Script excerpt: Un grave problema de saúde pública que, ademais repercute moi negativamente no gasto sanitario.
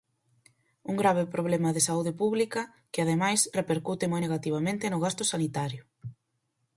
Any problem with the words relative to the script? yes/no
no